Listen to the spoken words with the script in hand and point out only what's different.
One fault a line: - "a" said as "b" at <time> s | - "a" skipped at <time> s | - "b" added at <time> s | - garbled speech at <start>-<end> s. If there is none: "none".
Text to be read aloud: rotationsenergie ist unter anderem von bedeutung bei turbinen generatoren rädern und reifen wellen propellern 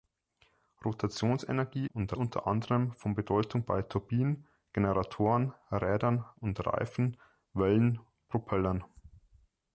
- "ist" said as "und" at 1.9 s